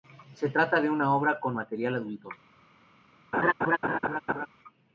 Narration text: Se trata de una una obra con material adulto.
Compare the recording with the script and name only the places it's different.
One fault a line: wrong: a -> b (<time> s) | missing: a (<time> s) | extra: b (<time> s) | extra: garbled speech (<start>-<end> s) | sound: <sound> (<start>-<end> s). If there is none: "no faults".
missing: una (1.1 s)
sound: laugh (3.3-4.5 s)